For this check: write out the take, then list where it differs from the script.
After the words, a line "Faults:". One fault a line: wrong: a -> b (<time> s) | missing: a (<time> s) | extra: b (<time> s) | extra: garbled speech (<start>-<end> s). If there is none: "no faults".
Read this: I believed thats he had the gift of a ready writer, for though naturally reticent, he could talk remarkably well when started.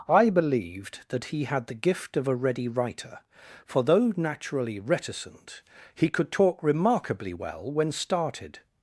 I believed that he had the gift of a ready writer, for though naturally reticent, he could talk remarkably well when started.
Faults:
wrong: thats -> that (1.1 s)